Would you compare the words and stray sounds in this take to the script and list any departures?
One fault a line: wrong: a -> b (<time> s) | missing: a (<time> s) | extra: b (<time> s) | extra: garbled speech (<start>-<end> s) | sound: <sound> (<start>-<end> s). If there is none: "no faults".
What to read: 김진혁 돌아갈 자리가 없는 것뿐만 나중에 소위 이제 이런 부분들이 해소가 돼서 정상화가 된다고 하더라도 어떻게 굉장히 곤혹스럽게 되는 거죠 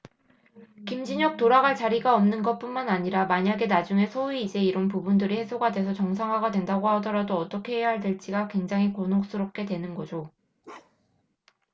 extra: 아니라 만약에 (2.9 s)
extra: 해야 될지가 (7.8 s)
sound: bark (10.6-11.2 s)